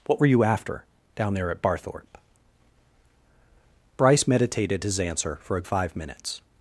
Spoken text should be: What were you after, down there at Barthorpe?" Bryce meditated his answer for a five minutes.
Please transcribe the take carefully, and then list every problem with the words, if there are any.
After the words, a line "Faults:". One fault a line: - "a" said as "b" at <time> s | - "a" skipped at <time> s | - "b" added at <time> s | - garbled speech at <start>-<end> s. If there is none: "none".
What were you after, down there at Barthorpe?" Bryce meditated his answer for a five minutes.
Faults:
none